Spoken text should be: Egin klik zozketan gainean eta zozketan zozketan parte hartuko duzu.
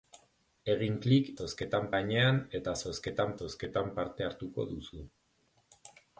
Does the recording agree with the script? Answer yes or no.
yes